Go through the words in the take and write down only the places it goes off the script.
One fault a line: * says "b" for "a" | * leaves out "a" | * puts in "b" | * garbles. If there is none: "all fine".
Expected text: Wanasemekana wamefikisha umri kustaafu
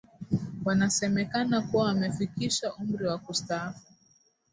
* puts in "kuwa"
* puts in "wa"